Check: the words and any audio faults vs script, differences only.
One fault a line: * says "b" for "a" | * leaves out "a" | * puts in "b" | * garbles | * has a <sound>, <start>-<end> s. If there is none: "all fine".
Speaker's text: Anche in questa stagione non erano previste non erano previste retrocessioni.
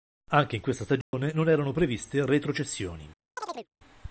* has a dropout, 1.0-1.1 s
* leaves out "non erano previste"
* has a chirp, 3.4-3.7 s